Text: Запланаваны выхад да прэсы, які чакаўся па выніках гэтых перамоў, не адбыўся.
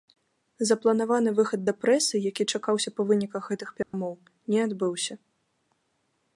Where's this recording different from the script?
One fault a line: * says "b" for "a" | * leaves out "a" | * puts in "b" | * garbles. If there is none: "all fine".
all fine